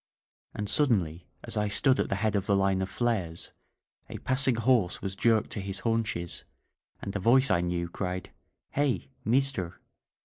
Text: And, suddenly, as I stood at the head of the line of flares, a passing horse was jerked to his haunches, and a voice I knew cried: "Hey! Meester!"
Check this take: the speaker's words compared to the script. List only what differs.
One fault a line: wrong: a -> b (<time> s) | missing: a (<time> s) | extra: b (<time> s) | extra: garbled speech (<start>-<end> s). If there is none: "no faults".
no faults